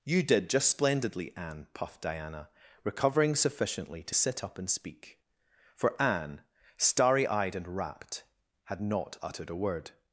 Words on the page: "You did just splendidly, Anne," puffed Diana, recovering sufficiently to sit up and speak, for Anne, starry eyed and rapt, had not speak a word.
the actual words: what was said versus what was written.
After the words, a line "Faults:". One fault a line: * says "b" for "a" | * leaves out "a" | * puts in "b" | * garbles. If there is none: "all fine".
"You did just splendidly, Anne," puffed Diana, recovering sufficiently to sit up and speak, for Anne, starry eyed and rapt, had not uttered a word.
Faults:
* says "uttered" for "speak"